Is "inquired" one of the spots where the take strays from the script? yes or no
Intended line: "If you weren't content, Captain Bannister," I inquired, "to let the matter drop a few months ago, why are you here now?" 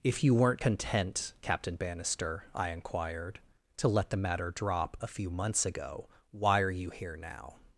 no